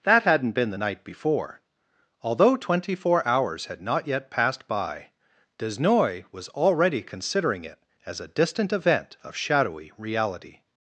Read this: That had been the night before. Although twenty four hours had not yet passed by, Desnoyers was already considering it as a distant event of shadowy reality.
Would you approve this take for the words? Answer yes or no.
no